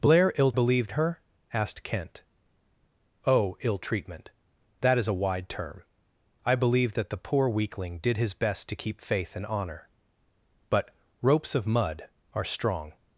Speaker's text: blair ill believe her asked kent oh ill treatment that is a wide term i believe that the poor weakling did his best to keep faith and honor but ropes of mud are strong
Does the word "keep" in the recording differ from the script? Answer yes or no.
no